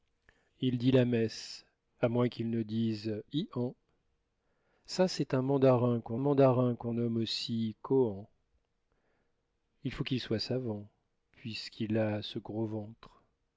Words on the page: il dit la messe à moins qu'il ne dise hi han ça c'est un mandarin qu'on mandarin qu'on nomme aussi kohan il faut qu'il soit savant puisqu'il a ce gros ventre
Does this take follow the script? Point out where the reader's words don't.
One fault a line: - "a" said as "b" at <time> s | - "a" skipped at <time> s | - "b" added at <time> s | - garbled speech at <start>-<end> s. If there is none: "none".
none